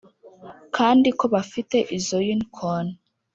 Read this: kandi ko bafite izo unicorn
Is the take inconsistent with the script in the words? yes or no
no